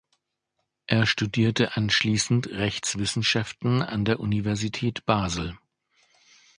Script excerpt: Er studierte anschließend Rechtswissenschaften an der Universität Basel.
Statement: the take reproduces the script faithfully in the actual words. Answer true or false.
true